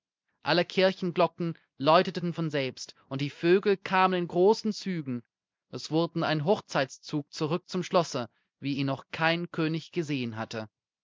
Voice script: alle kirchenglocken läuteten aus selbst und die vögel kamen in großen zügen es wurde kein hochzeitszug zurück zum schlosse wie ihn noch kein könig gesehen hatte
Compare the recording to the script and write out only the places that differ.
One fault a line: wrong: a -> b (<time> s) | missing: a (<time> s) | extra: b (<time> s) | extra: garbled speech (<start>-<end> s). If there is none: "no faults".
wrong: aus -> von (2.3 s)
wrong: kein -> ein (6.2 s)